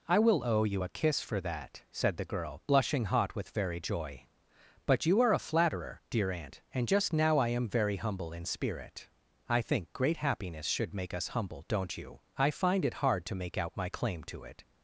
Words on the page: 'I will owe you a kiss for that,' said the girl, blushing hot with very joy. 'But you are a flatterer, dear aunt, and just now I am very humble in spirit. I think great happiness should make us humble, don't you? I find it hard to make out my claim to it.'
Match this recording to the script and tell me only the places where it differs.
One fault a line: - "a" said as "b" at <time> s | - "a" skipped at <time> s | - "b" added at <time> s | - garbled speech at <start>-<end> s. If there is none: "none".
none